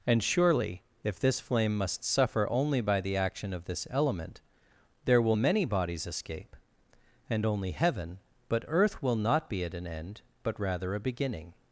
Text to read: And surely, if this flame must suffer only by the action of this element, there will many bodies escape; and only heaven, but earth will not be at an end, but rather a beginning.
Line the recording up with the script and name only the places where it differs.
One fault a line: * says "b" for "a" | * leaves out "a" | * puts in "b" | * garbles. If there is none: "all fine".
all fine